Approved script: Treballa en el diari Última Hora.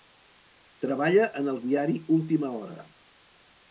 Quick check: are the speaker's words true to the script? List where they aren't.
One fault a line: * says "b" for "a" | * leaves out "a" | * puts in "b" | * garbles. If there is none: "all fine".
all fine